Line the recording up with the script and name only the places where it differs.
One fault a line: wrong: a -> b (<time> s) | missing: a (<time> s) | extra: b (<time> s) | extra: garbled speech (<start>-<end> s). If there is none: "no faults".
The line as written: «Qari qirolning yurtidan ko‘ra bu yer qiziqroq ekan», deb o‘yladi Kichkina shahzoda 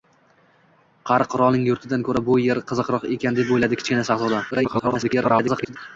extra: garbled speech (4.5-5.8 s)